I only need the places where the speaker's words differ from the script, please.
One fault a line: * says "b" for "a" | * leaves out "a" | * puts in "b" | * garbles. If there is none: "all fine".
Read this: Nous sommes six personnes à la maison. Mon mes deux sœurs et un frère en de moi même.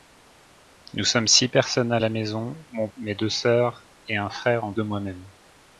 all fine